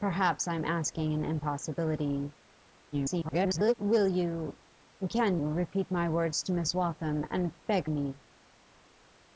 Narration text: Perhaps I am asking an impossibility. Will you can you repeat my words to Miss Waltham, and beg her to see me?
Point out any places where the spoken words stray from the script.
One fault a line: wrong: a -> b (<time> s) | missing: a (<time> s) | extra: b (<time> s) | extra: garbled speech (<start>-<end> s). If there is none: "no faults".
extra: garbled speech (2.9-3.7 s)
missing: you (5.4 s)
missing: her to see (7.9 s)